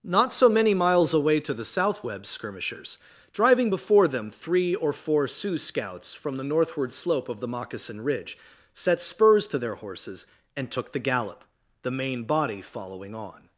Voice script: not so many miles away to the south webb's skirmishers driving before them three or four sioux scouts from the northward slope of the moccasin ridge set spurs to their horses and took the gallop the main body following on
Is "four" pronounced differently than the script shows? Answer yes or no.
no